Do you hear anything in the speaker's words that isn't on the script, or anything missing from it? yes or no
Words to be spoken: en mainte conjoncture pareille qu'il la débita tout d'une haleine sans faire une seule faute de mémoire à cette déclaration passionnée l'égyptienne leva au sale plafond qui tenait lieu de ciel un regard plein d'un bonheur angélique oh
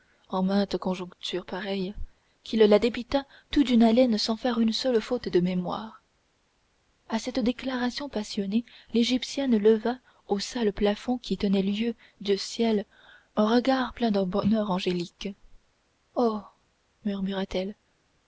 no